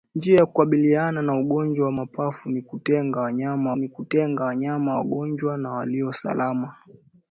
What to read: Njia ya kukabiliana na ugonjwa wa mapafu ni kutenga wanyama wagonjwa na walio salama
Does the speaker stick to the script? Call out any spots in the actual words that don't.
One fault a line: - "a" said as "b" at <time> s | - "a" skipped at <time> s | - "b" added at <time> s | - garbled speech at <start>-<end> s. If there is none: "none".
- "ni kutenga wanyama" added at 3.8 s